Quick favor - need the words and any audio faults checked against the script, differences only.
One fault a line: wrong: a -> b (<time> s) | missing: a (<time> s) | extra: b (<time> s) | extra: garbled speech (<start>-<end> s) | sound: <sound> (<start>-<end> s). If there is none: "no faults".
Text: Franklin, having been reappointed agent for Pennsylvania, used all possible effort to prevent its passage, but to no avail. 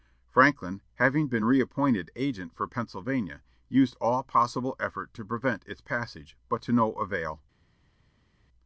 no faults